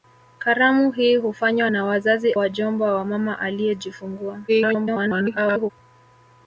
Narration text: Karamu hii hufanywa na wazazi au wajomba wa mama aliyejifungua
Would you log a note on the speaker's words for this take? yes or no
yes